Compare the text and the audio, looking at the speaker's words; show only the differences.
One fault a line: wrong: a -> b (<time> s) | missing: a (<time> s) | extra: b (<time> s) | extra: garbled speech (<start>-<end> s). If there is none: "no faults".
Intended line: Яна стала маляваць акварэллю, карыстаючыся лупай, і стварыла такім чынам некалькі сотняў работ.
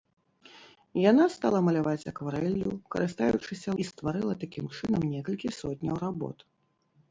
missing: лупай (3.7 s)